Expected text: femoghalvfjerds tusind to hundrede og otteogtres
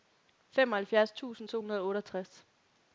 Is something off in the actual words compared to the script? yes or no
no